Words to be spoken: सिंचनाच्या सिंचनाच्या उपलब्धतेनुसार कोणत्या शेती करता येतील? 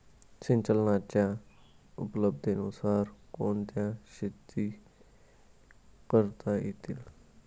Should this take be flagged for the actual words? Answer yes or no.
yes